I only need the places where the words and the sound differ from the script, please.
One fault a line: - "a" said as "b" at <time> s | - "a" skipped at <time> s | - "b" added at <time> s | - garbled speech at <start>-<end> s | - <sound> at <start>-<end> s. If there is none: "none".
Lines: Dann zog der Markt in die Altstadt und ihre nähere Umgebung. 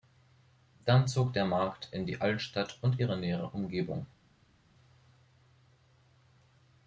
none